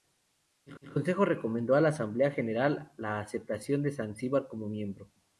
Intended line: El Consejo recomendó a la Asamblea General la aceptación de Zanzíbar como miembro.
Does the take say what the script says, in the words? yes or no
no